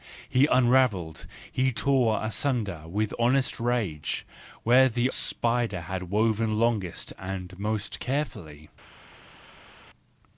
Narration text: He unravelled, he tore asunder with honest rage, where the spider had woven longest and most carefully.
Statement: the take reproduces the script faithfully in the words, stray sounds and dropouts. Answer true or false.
true